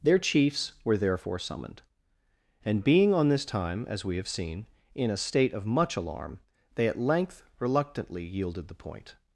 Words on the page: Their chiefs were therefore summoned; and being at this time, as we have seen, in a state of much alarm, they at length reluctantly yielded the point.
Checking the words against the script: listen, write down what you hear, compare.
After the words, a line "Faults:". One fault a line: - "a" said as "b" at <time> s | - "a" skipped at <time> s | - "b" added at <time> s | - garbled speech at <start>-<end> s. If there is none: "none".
Their chiefs were therefore summoned; and being on this time, as we have seen, in a state of much alarm, they at length reluctantly yielded the point.
Faults:
- "at" said as "on" at 3.1 s